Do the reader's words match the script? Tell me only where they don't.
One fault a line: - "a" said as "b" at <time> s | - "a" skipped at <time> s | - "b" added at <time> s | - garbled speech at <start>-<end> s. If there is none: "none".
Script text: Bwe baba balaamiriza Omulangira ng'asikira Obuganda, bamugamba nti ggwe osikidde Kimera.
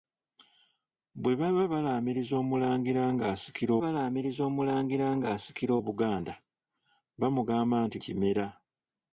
- "balaamiriza Omulangira ng'asikira" added at 3.8 s
- "ggwe osikidde" skipped at 8.0 s